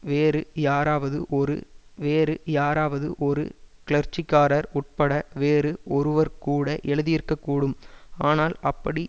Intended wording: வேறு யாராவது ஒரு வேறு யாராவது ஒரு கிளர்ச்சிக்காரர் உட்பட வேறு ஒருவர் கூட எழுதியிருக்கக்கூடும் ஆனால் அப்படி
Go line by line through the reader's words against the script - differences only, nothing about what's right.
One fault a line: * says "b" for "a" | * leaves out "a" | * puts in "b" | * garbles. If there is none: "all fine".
all fine